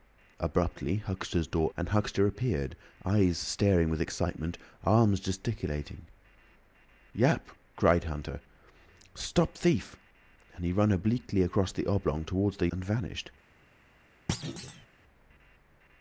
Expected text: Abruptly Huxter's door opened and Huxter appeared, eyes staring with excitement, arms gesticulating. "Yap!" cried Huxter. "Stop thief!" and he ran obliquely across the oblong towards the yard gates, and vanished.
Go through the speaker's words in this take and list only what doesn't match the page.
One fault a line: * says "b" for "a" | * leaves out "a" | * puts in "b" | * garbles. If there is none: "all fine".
* leaves out "opened"
* leaves out "yard gates"